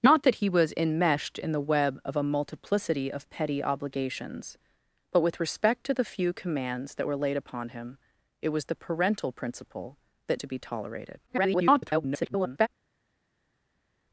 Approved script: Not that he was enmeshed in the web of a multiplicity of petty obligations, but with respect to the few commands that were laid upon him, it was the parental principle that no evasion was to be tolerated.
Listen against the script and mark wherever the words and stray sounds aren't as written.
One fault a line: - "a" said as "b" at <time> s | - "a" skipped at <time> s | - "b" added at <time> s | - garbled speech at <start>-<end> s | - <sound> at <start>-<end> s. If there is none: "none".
- "no evasion was" skipped at 10.4 s
- garbled speech at 11.3-12.7 s